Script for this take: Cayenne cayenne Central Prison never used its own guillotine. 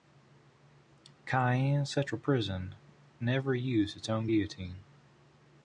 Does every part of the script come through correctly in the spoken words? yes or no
no